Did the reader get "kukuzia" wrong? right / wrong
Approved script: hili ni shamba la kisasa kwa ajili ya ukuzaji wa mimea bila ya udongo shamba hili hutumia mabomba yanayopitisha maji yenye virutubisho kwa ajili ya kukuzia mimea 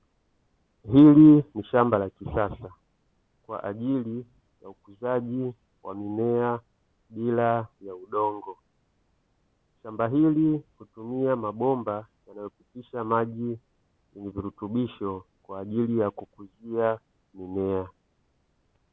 right